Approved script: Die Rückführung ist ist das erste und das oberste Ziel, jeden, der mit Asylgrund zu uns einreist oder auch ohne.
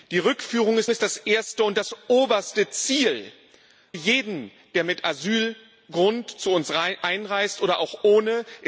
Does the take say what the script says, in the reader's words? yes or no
yes